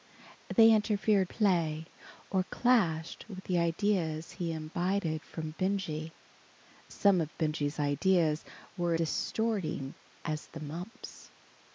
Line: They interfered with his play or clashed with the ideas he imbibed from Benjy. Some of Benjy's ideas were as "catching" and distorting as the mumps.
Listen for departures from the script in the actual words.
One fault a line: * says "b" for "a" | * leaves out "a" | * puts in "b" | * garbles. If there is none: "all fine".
* leaves out "with his"
* leaves out "as catching and"